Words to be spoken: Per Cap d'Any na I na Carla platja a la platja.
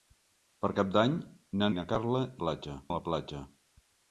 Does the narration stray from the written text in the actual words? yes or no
no